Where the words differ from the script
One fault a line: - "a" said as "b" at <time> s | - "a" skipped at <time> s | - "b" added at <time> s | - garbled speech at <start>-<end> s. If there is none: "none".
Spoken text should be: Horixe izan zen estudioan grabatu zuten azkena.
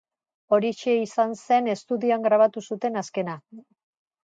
none